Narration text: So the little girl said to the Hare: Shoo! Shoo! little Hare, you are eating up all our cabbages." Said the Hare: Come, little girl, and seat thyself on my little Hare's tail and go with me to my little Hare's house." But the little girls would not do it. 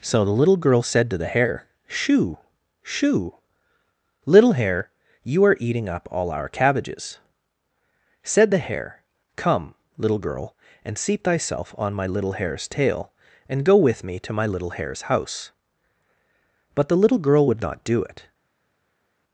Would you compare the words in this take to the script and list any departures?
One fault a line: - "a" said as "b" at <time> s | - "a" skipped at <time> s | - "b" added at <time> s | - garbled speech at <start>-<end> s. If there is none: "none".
- "girls" said as "girl" at 17.2 s